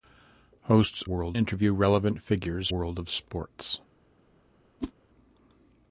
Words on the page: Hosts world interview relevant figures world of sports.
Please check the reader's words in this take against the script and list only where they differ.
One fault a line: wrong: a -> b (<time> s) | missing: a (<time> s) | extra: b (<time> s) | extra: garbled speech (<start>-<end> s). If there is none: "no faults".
no faults